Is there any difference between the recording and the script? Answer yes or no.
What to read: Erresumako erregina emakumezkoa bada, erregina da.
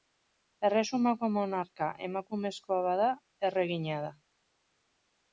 yes